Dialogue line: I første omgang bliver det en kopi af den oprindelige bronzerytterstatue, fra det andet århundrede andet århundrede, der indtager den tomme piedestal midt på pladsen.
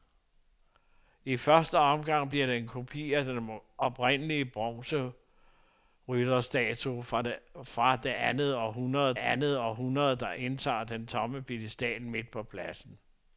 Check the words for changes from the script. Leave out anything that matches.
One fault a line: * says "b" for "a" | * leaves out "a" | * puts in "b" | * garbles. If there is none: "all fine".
all fine